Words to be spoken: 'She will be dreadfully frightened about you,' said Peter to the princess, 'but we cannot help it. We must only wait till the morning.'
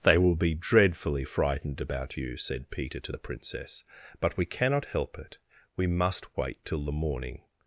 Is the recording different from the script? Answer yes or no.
yes